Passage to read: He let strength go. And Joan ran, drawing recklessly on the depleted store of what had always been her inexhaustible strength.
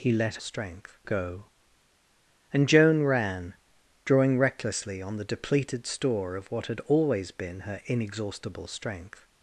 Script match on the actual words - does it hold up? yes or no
yes